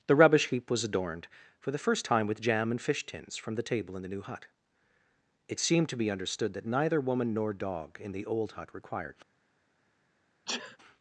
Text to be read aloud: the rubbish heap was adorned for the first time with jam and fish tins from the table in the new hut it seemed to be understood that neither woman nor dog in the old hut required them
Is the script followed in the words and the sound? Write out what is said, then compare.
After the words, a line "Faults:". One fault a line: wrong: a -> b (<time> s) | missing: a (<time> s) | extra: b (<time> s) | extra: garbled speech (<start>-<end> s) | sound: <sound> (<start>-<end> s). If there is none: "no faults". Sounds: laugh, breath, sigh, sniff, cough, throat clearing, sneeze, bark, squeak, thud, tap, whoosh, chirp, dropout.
the rubbish heap was adorned for the first time with jam and fish tins from the table in the new hut it seemed to be understood that neither woman nor dog in the old hut required
Faults:
missing: them (9.2 s)
sound: sneeze (10.5-10.8 s)